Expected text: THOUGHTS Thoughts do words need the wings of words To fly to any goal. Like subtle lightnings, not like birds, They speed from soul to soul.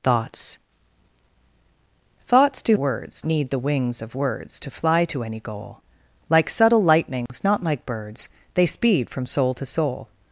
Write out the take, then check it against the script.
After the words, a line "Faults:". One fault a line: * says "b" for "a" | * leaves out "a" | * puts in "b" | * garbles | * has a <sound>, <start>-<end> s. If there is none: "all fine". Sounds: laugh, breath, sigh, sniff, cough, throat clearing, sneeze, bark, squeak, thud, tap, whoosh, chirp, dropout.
THOUGHTS Thoughts do words need the wings of words To fly to any goal. Like subtle lightnings, not like birds, They speed from soul to soul.
Faults:
* has a dropout, 7.3-7.3 s